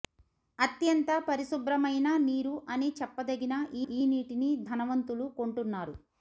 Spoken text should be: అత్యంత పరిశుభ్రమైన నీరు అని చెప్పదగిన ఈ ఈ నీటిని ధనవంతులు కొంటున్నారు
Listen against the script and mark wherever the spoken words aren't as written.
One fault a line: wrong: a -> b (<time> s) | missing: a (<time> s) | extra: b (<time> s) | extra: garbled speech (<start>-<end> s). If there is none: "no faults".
no faults